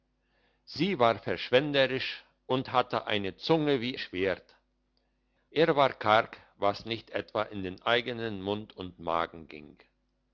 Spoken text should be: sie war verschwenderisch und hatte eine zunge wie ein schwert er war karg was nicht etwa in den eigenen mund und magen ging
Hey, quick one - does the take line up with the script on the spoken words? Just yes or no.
no